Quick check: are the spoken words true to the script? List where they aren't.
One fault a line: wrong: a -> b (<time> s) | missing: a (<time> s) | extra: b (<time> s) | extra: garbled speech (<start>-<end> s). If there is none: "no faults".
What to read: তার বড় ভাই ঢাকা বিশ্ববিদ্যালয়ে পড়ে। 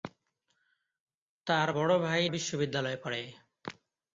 missing: ঢাকা (2.2 s)